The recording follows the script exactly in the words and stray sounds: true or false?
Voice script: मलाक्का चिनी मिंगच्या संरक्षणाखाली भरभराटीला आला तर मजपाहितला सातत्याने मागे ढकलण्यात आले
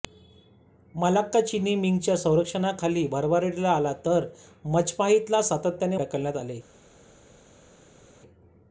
false